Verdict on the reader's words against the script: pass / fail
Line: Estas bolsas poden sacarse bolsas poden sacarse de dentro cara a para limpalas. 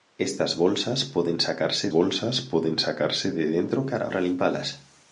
pass